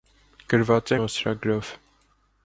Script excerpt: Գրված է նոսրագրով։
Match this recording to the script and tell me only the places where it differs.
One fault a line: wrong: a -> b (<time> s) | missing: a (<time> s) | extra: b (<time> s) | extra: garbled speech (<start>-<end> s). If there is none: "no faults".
no faults